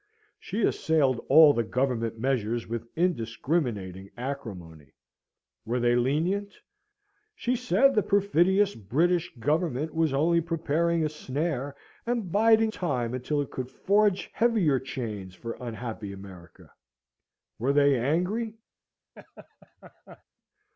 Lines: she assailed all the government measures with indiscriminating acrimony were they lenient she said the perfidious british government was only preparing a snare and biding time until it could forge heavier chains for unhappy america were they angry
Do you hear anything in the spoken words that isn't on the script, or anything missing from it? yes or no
no